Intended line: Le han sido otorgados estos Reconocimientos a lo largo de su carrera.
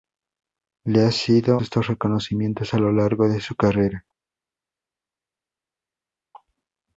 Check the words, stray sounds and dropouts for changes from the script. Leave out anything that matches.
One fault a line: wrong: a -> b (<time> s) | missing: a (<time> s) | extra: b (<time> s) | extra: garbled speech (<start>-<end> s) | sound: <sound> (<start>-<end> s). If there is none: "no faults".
missing: otorgados (1.6 s)